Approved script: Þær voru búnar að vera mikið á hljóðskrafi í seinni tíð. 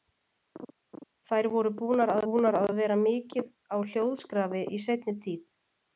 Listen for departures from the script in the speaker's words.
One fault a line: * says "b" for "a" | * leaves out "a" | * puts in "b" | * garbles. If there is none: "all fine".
* puts in "búnar að"